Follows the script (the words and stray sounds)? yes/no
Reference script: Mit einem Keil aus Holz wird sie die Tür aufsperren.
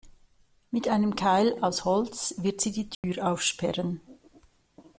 no